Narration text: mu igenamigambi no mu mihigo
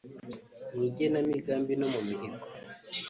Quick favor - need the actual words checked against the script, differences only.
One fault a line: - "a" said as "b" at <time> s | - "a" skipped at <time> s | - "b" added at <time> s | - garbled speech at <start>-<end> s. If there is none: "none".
none